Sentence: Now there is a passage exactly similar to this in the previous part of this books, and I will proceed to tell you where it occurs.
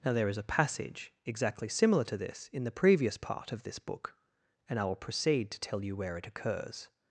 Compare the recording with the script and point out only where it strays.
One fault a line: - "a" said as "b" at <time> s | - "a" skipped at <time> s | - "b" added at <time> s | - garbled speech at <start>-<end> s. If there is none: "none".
- "books" said as "book" at 3.8 s